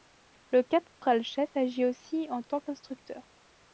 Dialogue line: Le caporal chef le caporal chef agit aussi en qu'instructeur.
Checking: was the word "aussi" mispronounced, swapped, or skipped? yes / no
no